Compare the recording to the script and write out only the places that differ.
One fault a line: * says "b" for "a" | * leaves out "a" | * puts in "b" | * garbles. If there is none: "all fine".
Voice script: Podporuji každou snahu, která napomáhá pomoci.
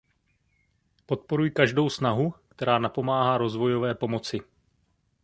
* puts in "rozvojové"